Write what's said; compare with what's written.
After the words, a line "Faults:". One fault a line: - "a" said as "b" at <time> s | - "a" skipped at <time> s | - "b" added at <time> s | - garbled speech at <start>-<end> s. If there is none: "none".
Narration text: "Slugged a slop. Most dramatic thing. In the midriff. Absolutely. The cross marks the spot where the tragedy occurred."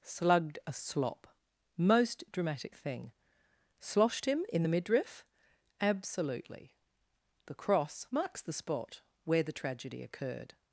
"Slugged a slop. Most dramatic thing. Sloshed him in the midriff. Absolutely. The cross marks the spot where the tragedy occurred."
Faults:
- "Sloshed him" added at 3.8 s